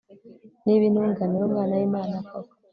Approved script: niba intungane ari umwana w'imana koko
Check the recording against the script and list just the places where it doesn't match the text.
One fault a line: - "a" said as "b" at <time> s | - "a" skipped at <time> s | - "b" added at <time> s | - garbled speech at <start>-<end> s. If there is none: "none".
none